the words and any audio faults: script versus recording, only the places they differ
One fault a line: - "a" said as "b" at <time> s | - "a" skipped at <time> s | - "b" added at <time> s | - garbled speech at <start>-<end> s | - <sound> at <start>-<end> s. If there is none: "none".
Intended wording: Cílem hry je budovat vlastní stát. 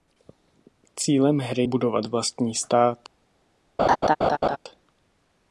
- "je" skipped at 1.7 s
- laugh at 3.8-4.6 s